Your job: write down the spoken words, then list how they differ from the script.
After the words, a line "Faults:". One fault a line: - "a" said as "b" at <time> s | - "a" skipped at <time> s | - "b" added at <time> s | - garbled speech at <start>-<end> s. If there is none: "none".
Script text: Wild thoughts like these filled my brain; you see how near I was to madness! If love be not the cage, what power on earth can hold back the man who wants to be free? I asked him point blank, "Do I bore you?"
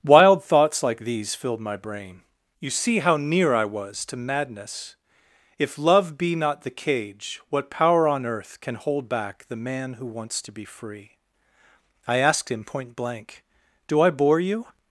Wild thoughts like these filled my brain; you see how near I was to madness! If love be not the cage, what power on earth can hold back the man who wants to be free? I asked him point blank, "Do I bore you?"
Faults:
none